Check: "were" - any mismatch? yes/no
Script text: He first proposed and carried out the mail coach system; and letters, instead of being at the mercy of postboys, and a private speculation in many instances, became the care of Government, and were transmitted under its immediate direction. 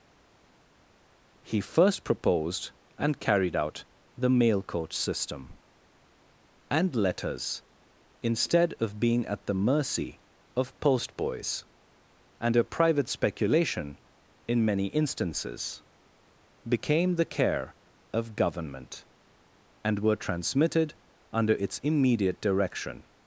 no